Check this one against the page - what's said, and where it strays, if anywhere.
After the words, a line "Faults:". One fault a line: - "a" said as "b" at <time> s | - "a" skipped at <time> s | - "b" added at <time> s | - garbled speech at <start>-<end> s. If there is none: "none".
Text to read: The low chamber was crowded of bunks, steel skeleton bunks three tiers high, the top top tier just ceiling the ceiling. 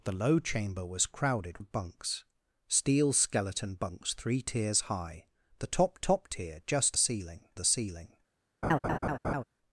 The low chamber was crowded of bunks, steel skeleton bunks three tiers high, the top top tier just ceiling the ceiling.
Faults:
none